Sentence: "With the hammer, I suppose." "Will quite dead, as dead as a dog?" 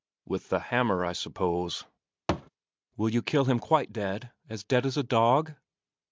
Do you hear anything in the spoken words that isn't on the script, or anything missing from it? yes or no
yes